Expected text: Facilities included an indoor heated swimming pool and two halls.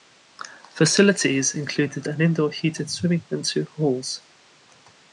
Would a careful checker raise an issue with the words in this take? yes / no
yes